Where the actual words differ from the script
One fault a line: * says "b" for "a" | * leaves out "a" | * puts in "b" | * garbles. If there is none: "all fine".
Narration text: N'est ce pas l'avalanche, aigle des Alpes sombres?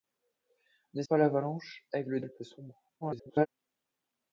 * leaves out "ce"
* leaves out "des"
* garbles